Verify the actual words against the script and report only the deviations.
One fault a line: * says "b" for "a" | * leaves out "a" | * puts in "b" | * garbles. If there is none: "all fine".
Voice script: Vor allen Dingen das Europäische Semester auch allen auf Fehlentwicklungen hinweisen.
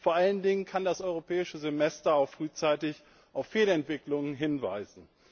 * puts in "kann"
* says "frühzeitig" for "allen"